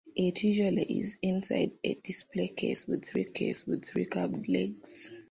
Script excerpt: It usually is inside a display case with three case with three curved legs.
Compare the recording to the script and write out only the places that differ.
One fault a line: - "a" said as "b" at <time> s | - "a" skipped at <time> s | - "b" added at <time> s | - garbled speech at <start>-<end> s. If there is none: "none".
none